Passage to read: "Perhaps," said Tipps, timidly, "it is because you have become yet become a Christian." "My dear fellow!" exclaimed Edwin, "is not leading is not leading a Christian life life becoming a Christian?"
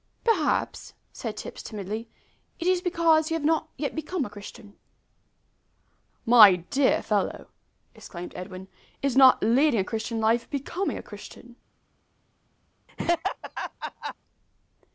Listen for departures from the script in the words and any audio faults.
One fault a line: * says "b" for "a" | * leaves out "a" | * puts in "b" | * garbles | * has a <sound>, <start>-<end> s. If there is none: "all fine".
* says "not" for "become"
* leaves out "is not leading"
* leaves out "life"
* has a laugh, 12.9-14.1 s